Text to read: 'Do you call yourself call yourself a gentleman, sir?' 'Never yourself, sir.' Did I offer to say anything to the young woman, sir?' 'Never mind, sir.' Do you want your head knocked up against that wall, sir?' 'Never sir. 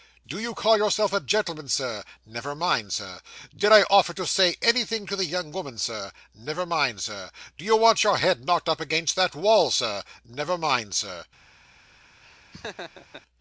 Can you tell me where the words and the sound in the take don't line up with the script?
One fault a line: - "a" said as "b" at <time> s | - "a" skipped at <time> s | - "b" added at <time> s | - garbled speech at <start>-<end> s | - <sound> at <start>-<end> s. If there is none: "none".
- "call yourself" skipped at 1.1 s
- "yourself" said as "mind" at 2.5 s
- "mind" added at 10.6 s
- laugh at 12.2-13.2 s